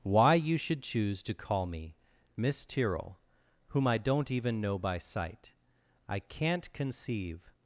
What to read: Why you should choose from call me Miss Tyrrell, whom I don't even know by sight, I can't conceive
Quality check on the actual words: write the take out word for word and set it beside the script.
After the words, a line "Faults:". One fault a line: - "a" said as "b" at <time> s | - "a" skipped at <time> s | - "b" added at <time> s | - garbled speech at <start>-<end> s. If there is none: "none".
Why you should choose to call me Miss Tyrrell, whom I don't even know by sight, I can't conceive
Faults:
- "from" said as "to" at 1.2 s